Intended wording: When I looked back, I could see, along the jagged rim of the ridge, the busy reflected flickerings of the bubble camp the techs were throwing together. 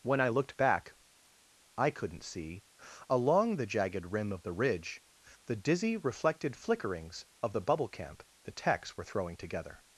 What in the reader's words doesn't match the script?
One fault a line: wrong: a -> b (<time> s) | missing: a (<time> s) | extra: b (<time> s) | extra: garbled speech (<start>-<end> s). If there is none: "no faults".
wrong: could -> couldn't (1.9 s)
wrong: busy -> dizzy (5.6 s)